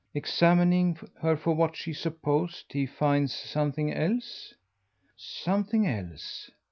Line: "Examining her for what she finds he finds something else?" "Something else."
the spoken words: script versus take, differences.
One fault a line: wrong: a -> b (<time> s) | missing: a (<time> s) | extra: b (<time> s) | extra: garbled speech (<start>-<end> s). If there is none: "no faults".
wrong: finds -> supposed (1.9 s)